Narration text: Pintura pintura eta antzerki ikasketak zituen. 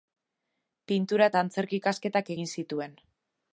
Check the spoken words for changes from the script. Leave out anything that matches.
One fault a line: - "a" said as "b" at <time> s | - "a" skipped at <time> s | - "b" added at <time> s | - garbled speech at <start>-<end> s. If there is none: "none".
- "pintura" skipped at 1.3 s
- "egin" added at 2.3 s